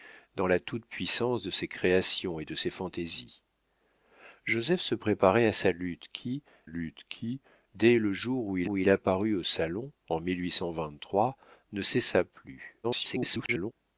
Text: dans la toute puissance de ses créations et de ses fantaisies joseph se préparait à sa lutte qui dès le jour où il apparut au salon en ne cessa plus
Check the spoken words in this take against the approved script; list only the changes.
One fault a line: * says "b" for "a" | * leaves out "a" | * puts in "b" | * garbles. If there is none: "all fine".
* puts in "lutte qui"
* puts in "où il"
* garbles